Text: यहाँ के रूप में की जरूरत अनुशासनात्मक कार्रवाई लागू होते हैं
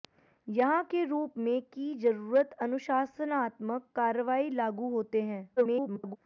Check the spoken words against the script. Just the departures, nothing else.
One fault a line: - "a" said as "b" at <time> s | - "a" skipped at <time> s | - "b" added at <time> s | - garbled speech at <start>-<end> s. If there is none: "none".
- garbled speech at 5.6-6.2 s